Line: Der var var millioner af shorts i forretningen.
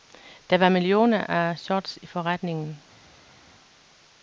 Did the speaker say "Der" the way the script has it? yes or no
yes